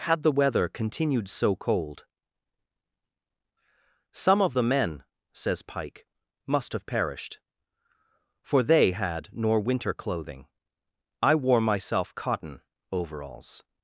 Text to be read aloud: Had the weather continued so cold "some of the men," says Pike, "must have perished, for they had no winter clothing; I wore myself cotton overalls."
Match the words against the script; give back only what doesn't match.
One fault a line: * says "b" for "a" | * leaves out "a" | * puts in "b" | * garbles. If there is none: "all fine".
* says "nor" for "no"